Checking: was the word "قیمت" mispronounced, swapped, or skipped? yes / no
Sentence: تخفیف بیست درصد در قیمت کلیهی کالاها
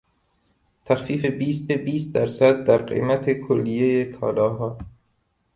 no